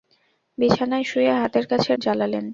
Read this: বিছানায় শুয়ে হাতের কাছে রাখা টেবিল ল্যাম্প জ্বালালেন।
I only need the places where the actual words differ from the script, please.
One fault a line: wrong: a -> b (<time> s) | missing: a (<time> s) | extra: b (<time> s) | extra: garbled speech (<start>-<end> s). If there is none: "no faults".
missing: রাখা টেবিল ল্যাম্প (1.9 s)